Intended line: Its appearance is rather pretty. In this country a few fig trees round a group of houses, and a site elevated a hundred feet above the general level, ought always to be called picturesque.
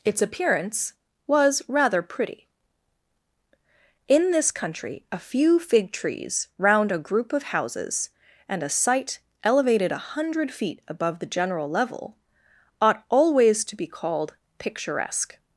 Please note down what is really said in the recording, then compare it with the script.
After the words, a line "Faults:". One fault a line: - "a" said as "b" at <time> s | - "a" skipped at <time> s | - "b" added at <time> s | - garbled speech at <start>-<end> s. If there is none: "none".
Its appearance was rather pretty. In this country a few fig trees round a group of houses, and a site elevated a hundred feet above the general level, ought always to be called picturesque.
Faults:
- "is" said as "was" at 1.3 s